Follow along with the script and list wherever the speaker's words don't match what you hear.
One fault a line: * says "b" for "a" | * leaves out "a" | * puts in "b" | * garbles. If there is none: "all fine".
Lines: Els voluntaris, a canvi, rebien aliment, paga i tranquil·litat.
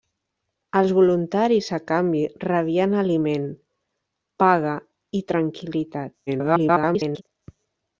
* garbles